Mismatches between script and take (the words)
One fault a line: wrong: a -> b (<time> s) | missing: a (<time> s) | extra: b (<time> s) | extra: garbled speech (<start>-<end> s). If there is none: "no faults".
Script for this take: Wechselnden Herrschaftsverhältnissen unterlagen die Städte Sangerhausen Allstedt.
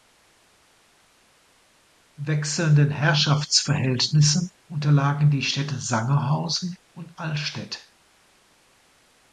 extra: und (6.9 s)